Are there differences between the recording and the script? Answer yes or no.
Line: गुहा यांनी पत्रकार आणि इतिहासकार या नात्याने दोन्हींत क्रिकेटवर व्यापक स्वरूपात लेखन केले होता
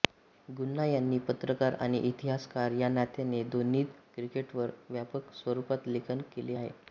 yes